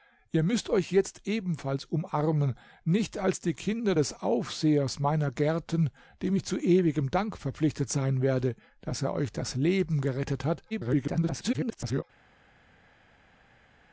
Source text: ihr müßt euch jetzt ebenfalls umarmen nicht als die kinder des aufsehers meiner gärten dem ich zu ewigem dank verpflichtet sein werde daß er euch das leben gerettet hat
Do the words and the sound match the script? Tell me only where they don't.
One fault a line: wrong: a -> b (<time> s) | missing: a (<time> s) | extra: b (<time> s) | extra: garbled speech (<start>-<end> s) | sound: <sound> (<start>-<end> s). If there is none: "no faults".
extra: garbled speech (10.7-12.0 s)